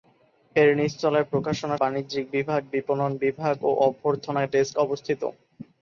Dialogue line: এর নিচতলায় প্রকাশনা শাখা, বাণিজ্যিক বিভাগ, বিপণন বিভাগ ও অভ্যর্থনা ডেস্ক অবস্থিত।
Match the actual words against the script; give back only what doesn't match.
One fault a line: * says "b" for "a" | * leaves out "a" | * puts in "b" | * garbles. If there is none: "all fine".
* leaves out "শাখা"